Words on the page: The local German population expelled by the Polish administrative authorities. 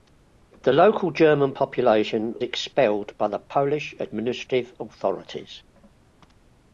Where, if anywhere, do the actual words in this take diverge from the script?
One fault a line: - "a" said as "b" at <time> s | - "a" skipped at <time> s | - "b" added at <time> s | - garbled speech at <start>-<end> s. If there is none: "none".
none